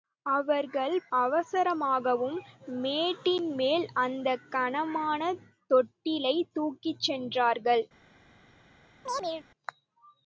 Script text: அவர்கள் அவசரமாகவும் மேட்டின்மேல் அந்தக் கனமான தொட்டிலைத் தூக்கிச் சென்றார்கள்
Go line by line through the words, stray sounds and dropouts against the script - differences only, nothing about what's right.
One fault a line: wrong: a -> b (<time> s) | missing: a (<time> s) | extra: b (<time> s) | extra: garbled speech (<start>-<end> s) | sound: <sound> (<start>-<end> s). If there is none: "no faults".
sound: chirp (9.1-9.5 s)